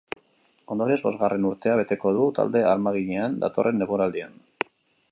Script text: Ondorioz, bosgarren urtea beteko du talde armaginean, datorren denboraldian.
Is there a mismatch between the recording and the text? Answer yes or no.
no